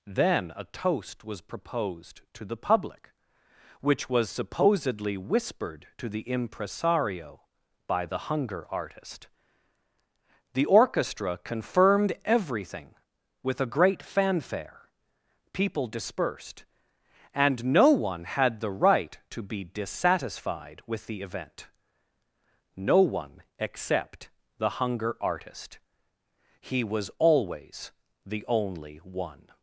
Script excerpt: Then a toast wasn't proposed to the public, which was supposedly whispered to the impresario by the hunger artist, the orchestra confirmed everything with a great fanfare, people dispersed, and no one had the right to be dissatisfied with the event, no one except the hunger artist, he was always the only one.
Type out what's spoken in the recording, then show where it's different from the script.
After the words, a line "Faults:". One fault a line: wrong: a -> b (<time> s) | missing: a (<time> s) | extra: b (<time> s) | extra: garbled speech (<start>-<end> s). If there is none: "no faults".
Then a toast was proposed to the public, which was supposedly whispered to the impresario by the hunger artist, the orchestra confirmed everything with a great fanfare, people dispersed, and no one had the right to be dissatisfied with the event, no one except the hunger artist, he was always the only one.
Faults:
wrong: wasn't -> was (1.2 s)